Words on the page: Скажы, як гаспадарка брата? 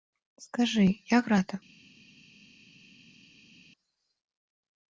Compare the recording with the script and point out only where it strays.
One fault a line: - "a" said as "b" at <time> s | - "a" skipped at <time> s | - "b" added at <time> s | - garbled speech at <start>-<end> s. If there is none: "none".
- "гаспадарка" skipped at 1.3 s